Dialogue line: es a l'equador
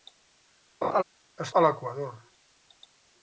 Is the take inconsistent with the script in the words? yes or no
no